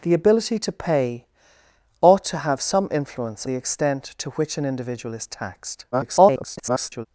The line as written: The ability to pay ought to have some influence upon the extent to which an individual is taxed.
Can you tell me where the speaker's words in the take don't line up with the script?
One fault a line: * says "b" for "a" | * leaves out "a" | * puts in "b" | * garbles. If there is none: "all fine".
* leaves out "upon"
* garbles